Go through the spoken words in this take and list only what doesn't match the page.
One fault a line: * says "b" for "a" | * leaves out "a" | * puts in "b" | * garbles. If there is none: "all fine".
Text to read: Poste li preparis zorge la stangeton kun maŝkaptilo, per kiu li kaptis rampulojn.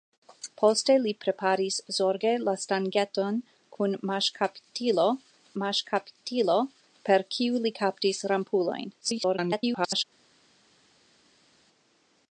* puts in "maŝkaptilo"
* garbles